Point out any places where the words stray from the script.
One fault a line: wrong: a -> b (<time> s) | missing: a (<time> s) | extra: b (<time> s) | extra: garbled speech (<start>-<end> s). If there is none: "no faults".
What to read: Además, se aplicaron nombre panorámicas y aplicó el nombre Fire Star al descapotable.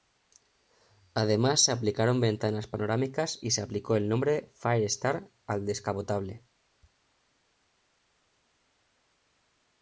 wrong: nombre -> ventanas (2.2 s)
extra: se (3.5 s)